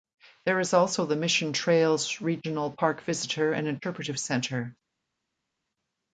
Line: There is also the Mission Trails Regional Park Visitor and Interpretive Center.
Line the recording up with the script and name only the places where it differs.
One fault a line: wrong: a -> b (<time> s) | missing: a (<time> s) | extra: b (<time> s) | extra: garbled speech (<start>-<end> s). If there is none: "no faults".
no faults